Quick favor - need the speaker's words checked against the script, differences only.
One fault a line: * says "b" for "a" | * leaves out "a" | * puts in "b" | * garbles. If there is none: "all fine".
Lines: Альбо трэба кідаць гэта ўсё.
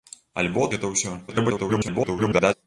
* leaves out "трэба кідаць"
* garbles